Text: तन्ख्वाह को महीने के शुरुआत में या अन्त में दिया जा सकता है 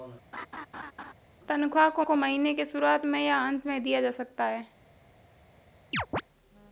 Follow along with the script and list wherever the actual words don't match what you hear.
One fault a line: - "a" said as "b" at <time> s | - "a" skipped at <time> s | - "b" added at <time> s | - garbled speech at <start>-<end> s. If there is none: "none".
- "को" added at 2.0 s